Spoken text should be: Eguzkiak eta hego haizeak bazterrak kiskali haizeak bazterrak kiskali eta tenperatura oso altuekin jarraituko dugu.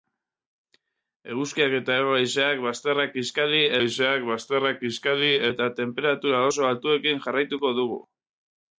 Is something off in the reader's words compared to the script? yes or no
no